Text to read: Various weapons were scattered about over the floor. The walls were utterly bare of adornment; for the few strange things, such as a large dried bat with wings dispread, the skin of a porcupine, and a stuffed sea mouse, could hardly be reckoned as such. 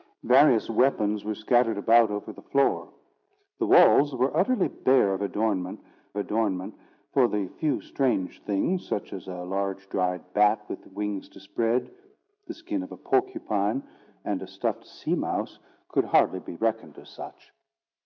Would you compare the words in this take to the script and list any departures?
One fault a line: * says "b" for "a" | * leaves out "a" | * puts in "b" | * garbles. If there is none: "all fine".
* puts in "adornment"